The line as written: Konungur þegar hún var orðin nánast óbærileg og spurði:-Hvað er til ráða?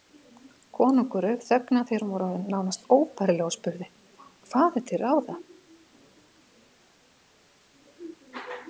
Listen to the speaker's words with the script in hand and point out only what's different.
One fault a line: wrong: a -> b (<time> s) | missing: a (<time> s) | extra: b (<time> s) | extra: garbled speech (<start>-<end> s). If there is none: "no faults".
extra: rauf þögnina (1.2 s)